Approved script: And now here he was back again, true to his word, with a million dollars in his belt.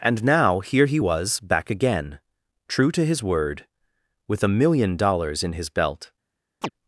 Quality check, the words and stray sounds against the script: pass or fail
fail